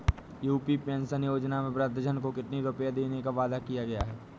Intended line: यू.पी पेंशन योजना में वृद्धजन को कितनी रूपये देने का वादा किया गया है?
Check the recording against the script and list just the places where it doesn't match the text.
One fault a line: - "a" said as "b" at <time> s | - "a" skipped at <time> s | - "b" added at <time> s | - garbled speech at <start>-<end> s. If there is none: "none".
none